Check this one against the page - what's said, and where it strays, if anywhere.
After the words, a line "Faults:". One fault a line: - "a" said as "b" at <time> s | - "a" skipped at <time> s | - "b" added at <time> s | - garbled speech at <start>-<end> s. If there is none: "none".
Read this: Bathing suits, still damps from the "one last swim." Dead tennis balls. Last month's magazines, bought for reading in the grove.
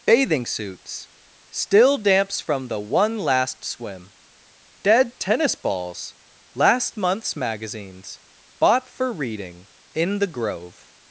Bathing suits, still damps from the "one last swim." Dead tennis balls. Last month's magazines, bought for reading in the grove.
Faults:
none